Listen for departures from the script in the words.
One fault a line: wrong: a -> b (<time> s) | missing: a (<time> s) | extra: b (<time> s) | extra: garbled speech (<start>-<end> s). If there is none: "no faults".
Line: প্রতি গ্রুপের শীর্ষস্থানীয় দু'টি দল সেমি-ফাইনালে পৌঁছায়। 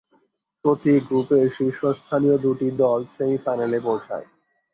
no faults